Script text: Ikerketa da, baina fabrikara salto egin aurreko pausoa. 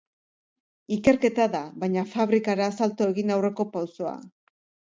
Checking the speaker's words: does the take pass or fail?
pass